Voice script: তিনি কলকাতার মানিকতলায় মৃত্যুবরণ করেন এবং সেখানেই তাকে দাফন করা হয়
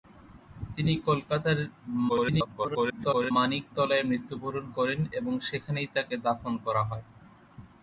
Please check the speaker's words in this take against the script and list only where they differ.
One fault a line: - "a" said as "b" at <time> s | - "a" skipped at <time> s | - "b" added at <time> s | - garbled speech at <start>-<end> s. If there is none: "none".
- garbled speech at 2.1-3.3 s